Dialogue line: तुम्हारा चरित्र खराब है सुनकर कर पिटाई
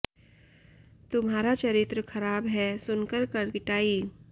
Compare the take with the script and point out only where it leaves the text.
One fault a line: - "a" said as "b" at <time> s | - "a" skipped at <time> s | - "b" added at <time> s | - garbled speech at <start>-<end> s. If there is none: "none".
none